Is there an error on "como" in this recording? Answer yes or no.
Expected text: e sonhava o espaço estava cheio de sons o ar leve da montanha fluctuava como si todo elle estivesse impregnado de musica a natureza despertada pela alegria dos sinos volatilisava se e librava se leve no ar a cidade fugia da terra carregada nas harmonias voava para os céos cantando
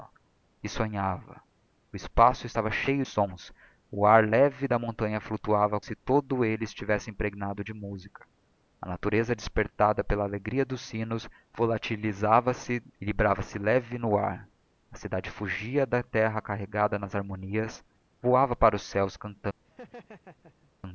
yes